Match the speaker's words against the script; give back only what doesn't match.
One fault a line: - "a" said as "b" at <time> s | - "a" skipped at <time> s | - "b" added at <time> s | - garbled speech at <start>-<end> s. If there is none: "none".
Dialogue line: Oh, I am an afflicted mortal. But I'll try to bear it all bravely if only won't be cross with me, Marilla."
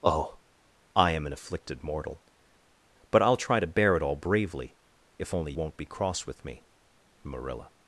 none